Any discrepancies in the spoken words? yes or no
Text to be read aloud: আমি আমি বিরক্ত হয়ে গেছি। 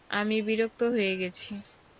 yes